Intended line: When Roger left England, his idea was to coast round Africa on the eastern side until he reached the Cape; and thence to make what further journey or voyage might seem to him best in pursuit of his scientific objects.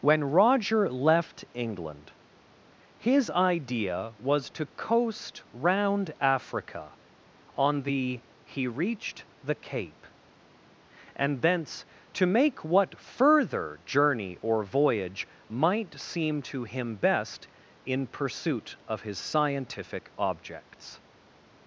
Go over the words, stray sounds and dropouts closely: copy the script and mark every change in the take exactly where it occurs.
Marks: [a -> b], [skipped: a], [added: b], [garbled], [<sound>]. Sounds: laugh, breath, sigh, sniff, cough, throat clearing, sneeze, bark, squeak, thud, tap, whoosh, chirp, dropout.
When Roger left England, his idea was to coast round Africa on the [skipped: eastern side until] he reached the Cape; and thence to make what further journey or voyage might seem to him best in pursuit of his scientific objects.